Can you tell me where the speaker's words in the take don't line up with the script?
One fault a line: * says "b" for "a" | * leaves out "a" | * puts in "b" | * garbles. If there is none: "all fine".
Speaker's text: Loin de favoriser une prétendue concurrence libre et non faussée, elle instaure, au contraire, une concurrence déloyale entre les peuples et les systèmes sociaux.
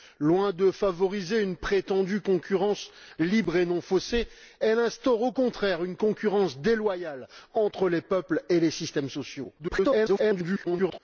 * garbles